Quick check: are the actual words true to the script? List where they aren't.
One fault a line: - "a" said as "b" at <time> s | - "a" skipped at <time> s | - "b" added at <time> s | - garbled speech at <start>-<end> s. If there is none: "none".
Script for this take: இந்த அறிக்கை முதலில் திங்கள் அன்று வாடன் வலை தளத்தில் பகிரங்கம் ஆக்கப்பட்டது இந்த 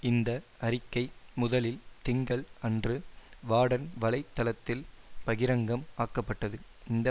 none